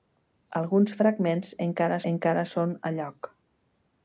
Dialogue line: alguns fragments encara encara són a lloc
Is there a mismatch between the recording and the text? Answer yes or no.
no